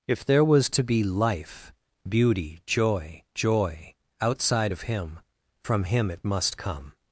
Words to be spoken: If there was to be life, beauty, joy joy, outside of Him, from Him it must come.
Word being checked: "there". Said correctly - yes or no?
yes